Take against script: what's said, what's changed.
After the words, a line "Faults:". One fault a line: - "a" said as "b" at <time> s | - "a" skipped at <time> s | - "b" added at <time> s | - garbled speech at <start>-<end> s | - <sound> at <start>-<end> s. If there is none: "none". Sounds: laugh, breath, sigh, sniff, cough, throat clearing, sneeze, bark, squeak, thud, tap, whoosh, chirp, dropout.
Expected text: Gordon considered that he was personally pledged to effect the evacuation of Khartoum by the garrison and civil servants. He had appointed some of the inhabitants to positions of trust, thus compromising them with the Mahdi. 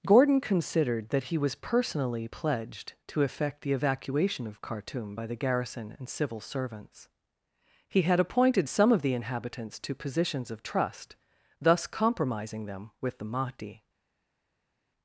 Gordon considered that he was personally pledged to effect the evacuation of Khartoum by the garrison and civil servants. He had appointed some of the inhabitants to positions of trust, thus compromising them with the Mahdi.
Faults:
none